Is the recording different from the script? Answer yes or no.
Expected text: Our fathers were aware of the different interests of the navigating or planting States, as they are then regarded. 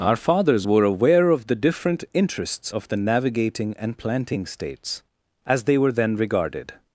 yes